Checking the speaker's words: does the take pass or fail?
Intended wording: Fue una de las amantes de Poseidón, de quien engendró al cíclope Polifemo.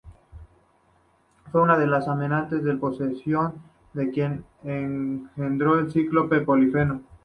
pass